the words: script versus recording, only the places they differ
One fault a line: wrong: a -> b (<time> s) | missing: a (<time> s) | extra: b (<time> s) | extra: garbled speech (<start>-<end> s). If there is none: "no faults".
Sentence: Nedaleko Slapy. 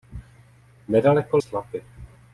no faults